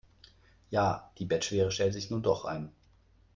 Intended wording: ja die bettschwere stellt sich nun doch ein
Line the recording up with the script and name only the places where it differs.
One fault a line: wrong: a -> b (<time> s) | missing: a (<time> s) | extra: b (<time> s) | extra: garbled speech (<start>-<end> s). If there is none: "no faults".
no faults